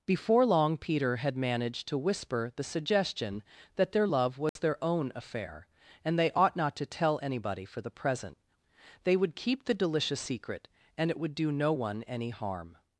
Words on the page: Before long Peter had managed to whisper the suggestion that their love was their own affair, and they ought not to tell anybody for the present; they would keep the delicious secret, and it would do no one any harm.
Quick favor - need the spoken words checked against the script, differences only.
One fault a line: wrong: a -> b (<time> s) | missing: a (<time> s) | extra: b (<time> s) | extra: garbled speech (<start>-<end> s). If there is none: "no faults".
no faults